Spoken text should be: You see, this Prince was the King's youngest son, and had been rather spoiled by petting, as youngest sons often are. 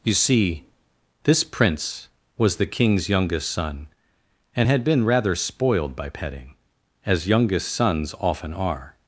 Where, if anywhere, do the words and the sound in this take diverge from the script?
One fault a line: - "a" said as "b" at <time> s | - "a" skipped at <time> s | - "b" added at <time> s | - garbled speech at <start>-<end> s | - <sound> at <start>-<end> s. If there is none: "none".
none